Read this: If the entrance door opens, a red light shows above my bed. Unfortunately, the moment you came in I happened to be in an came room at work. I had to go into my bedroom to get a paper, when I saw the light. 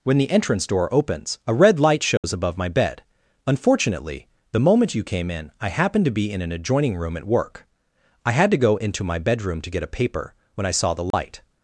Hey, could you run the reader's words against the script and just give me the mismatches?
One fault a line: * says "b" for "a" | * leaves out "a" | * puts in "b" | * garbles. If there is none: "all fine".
* says "When" for "If"
* says "adjoining" for "came"